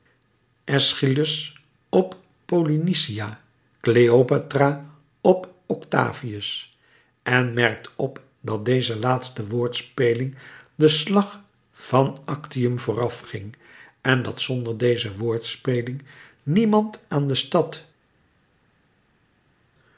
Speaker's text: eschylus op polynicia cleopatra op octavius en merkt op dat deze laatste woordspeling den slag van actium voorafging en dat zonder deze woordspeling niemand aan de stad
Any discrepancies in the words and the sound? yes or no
no